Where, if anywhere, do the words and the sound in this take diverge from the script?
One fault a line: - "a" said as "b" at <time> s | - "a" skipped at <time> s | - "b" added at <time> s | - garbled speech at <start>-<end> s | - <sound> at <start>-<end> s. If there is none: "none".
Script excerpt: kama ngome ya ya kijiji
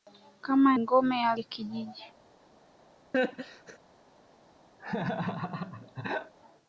- laugh at 3.1-3.8 s
- laugh at 4.8-6.3 s